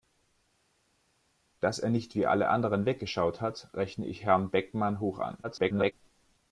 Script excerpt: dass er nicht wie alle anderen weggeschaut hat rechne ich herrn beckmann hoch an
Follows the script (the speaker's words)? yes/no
no